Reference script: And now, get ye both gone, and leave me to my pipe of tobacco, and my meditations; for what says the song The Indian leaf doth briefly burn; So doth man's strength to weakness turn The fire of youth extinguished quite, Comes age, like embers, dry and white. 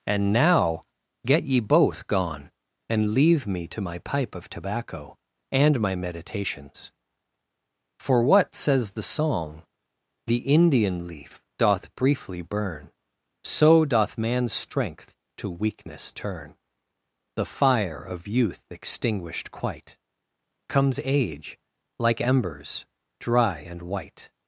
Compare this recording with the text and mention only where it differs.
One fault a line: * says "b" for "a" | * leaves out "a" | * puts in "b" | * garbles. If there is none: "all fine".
all fine